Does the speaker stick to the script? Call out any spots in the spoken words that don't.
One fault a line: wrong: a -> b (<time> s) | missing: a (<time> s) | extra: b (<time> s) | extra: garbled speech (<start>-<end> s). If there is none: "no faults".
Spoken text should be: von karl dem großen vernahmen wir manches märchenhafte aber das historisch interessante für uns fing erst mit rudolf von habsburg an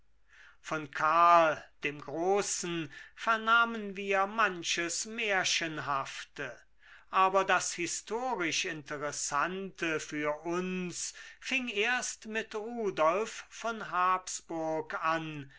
no faults